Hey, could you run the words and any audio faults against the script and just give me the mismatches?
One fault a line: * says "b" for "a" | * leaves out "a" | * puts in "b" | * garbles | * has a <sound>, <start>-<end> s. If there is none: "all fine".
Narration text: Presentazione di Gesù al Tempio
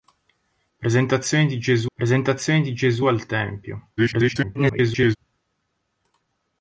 * puts in "presentazione di Gesù"
* garbles